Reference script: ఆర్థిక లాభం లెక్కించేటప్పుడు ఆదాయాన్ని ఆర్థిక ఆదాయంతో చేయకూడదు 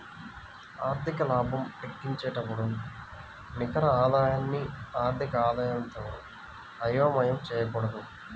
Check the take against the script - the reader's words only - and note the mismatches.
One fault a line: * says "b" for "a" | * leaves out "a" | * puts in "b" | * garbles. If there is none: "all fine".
* puts in "నికర"
* puts in "అయోమయం"